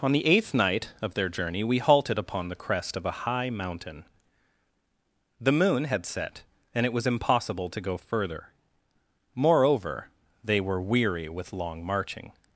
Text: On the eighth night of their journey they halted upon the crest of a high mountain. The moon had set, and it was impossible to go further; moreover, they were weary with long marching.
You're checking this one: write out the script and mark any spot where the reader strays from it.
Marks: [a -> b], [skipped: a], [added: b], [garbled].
On the eighth night of their journey [they -> we] halted upon the crest of a high mountain. The moon had set, and it was impossible to go further; moreover, they were weary with long marching.